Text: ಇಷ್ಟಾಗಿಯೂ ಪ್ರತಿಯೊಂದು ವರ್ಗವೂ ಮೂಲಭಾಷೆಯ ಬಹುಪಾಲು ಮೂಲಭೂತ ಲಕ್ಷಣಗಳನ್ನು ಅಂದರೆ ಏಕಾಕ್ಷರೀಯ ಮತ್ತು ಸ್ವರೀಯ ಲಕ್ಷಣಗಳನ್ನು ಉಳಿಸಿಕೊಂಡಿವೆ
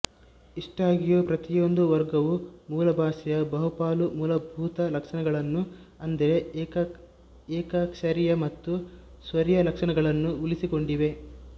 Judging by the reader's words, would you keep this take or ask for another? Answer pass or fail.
pass